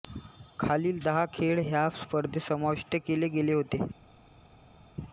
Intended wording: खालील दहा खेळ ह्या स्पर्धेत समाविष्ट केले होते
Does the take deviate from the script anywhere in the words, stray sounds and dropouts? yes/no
yes